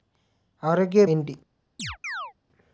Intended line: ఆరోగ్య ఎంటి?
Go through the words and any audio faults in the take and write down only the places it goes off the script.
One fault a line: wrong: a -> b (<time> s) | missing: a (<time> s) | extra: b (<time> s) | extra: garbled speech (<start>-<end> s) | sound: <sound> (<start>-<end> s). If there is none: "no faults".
sound: chirp (1.8-2.3 s)